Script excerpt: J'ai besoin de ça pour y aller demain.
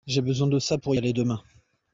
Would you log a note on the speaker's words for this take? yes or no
yes